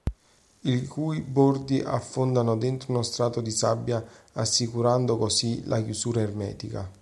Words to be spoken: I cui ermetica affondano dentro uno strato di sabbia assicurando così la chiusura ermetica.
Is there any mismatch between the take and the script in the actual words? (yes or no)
yes